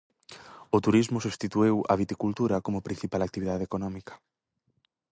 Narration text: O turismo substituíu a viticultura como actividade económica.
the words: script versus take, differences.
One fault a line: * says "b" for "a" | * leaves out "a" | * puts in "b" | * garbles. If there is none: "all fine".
* puts in "principal"